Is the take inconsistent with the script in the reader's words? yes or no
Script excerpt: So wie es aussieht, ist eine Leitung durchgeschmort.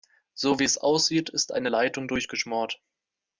no